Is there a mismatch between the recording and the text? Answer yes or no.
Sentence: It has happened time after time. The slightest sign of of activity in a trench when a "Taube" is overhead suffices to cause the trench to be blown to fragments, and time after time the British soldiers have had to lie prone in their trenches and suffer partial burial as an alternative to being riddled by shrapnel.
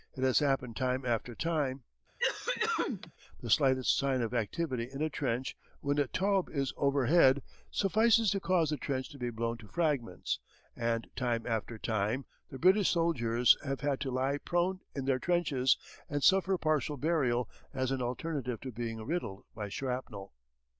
yes